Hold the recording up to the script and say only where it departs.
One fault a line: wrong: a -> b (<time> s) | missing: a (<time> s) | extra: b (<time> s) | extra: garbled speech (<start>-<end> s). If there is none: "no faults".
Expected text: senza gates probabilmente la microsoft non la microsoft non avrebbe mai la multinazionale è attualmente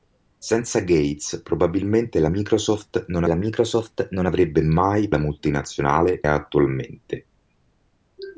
no faults